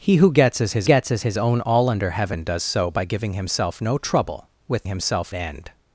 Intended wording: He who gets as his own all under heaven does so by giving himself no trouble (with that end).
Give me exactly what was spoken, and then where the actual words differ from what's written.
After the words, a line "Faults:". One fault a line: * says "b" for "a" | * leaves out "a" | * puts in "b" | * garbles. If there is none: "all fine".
He who gets as his gets as his own all under heaven does so by giving himself no trouble (with himself end).
Faults:
* puts in "gets as his"
* says "himself" for "that"